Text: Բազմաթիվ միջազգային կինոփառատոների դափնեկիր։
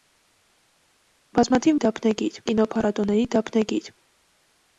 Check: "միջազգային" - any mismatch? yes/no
yes